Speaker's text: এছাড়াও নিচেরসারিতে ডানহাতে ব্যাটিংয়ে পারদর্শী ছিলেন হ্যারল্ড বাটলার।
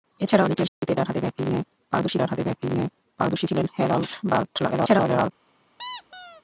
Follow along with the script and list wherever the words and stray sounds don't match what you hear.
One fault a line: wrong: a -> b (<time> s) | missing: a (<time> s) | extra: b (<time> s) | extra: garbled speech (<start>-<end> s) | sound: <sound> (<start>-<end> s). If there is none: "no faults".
sound: dropout (0.7-0.8 s)
extra: ডানহাতে ব্যাটিংয়ে পারদর্শী (2.2 s)
extra: garbled speech (4.7-5.3 s)
sound: squeak (5.8-6.4 s)